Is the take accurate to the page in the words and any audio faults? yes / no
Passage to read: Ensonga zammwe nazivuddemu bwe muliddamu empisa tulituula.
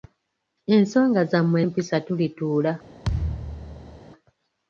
no